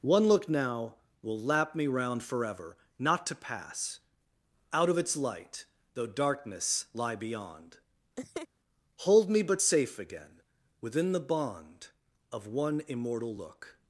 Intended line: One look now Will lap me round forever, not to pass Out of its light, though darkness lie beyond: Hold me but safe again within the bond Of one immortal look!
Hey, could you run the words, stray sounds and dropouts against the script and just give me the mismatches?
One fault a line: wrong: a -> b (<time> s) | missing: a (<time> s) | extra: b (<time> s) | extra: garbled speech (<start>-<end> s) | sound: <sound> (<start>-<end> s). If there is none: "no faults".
sound: laugh (8.2-8.5 s)